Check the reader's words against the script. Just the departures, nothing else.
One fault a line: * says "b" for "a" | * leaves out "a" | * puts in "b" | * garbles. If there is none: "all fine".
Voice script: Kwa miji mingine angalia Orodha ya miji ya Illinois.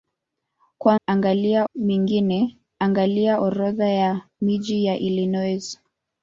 * says "angalia" for "miji"